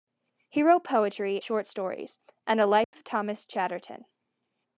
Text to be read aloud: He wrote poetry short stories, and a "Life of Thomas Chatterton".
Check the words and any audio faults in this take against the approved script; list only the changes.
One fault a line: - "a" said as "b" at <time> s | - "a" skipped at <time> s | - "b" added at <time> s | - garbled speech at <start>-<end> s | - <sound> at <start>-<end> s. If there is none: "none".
- dropout at 2.8-2.9 s